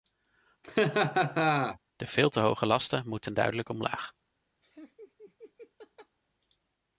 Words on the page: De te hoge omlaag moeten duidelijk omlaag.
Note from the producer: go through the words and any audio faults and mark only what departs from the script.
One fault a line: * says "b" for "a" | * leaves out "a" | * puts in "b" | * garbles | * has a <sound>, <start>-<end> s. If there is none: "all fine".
* has a laugh, 0.6-1.8 s
* puts in "veel"
* says "lasten" for "omlaag"
* has a laugh, 4.6-6.2 s